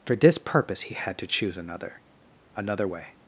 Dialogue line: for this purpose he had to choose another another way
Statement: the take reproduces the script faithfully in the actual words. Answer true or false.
true